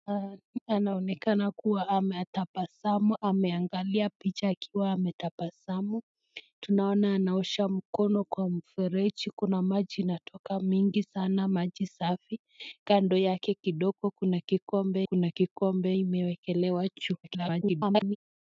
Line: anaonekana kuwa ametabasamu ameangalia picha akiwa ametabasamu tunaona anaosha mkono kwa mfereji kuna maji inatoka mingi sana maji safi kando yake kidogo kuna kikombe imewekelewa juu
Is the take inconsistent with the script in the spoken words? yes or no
yes